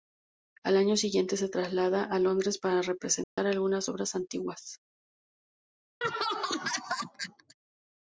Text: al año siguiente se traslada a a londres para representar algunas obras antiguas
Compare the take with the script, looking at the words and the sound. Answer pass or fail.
fail